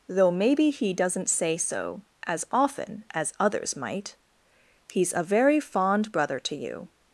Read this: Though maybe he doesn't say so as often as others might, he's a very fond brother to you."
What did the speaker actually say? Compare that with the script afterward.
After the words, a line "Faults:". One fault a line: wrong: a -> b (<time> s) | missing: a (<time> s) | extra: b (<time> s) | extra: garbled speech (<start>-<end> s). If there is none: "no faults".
Though maybe he doesn't say so as often as others might, he's a very fond brother to you."
Faults:
no faults